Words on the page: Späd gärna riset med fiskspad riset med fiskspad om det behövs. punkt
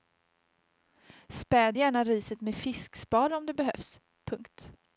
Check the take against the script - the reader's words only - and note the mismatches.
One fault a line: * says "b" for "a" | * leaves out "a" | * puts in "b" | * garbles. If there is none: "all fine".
* leaves out "riset med fiskspad"